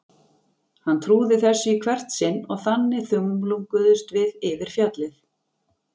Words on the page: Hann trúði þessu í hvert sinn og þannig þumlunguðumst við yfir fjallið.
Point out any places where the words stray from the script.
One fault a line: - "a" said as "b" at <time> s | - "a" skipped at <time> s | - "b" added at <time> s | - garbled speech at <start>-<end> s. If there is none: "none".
none